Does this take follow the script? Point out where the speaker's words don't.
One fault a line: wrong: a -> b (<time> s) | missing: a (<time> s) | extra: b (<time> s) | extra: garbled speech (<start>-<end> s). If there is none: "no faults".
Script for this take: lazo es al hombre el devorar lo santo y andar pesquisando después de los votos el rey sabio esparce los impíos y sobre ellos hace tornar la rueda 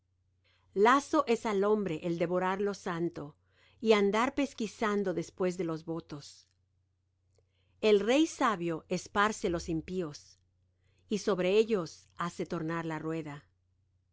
no faults